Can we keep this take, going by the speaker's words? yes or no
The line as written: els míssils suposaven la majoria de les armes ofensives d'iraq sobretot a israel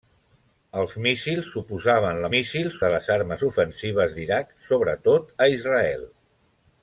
no